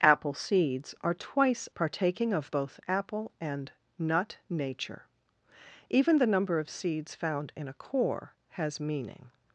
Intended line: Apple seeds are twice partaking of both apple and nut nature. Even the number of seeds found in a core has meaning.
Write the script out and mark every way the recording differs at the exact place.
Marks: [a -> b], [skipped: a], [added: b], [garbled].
Apple seeds are twice partaking of both apple and nut nature. Even the number of seeds found in a core has meaning.